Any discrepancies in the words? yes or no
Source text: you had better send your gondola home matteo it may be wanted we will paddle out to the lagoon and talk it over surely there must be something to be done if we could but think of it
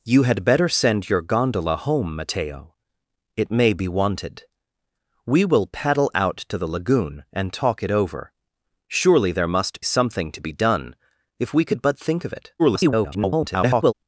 yes